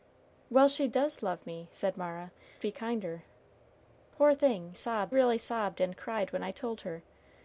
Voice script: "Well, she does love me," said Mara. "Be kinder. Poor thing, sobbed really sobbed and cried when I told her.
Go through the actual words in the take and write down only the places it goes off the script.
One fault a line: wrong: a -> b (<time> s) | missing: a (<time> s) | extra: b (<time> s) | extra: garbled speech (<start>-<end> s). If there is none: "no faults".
no faults